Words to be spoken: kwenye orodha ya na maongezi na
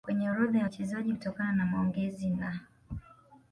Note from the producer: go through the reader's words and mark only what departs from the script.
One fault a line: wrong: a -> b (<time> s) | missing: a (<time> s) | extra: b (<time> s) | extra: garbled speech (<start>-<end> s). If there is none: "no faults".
extra: wachezaji Kutokana (0.6 s)